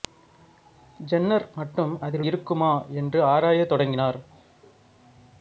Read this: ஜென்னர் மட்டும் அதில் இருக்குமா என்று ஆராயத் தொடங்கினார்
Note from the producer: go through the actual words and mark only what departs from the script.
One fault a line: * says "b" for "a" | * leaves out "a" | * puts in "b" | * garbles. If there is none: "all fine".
all fine